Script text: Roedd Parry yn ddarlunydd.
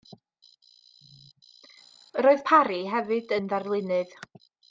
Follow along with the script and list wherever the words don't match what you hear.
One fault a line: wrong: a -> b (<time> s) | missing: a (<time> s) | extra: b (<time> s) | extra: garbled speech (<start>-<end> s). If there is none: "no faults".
extra: hefyd (2.9 s)